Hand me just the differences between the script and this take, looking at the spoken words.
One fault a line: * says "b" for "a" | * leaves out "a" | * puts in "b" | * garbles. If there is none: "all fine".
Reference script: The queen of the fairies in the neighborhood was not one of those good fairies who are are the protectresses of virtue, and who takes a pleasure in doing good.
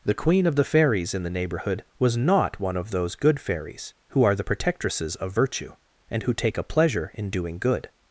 * leaves out "are"
* says "take" for "takes"